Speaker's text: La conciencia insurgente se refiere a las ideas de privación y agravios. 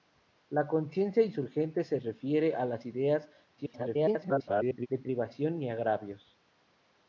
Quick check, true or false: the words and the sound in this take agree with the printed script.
false